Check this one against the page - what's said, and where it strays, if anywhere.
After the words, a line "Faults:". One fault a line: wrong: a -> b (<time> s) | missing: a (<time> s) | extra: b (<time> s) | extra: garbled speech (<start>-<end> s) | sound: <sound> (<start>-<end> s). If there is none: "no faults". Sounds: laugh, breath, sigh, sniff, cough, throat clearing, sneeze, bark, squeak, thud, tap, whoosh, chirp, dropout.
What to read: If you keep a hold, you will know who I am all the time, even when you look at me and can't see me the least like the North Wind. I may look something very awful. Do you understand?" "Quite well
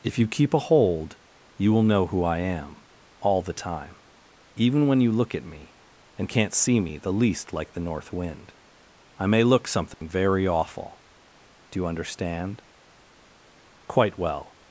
If you keep a hold, you will know who I am all the time, even when you look at me and can't see me the least like the North Wind. I may look something very awful. Do you understand?" "Quite well
Faults:
sound: dropout (9.9-10.0 s)